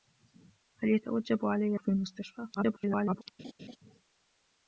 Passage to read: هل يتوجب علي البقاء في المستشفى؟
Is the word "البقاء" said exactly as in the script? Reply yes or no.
no